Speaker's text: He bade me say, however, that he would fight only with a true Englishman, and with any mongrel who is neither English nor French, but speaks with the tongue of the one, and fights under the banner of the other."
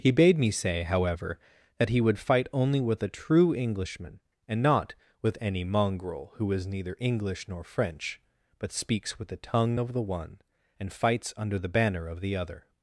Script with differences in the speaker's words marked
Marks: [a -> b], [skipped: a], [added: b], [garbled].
He bade me say, however, that he would fight only with a true Englishman, and [added: not] with any mongrel who is neither English nor French, but speaks with the tongue of the one, and fights under the banner of the other."